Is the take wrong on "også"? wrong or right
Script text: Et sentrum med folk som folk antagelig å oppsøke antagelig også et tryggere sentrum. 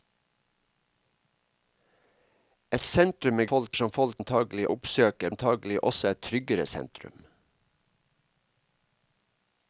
right